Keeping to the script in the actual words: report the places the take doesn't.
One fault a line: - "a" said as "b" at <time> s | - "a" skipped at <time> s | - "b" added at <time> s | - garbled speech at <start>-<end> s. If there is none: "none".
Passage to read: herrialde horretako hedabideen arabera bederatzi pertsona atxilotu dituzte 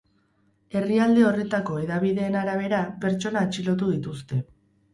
- "bederatzi" skipped at 2.8 s